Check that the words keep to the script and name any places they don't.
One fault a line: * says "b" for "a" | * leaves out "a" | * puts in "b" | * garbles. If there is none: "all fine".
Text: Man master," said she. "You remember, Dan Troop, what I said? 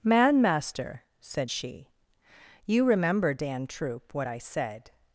all fine